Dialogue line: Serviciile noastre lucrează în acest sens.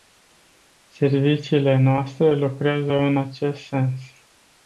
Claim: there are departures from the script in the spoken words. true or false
false